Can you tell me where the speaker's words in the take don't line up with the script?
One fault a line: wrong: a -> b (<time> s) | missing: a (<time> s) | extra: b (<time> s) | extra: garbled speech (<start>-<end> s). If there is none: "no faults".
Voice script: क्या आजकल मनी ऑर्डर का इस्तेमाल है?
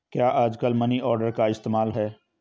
no faults